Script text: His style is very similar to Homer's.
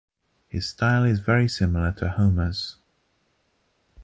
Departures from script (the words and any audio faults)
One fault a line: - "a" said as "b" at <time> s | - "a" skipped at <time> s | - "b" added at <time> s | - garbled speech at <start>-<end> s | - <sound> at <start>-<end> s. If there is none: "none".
none